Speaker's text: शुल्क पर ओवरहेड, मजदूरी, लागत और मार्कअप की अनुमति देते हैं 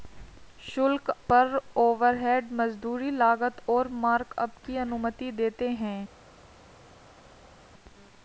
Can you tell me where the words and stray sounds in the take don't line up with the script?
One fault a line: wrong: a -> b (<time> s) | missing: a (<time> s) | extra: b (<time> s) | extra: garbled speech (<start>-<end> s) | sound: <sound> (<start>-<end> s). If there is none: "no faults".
no faults